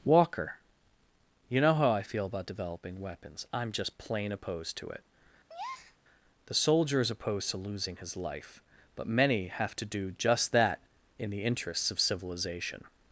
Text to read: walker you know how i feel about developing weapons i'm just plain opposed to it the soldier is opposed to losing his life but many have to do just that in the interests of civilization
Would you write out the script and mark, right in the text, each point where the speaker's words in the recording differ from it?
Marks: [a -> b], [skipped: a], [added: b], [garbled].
walker you know how i feel about developing weapons i'm just plain opposed to it the soldier is opposed to losing his life but many have to do just that in the interests of civilization